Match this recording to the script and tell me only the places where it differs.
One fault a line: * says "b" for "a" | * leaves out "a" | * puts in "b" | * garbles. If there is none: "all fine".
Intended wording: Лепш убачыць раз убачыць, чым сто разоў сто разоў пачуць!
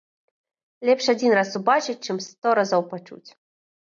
* says "адзін" for "убачыць"
* leaves out "сто разоў"